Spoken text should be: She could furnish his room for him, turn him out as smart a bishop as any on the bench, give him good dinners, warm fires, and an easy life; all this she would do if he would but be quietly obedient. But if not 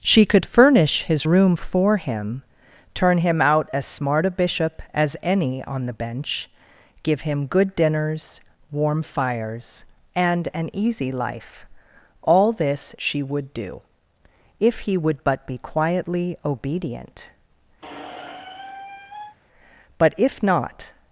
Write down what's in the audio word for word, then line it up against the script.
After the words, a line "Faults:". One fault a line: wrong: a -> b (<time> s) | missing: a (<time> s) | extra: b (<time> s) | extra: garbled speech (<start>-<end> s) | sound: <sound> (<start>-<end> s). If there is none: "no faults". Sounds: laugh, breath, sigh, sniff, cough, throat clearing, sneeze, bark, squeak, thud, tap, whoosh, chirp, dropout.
She could furnish his room for him, turn him out as smart a bishop as any on the bench, give him good dinners, warm fires, and an easy life; all this she would do if he would but be quietly obedient. But if not
Faults:
sound: squeak (17.8-19.4 s)